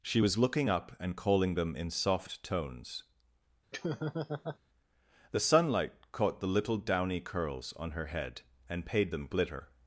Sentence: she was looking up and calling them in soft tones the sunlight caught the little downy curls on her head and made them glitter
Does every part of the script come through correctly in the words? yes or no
no